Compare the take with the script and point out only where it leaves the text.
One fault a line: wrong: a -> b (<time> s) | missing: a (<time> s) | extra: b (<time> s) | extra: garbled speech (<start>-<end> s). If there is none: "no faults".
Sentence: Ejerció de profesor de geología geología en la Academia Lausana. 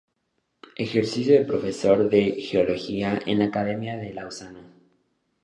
missing: geología (3.2 s)
extra: de (4.0 s)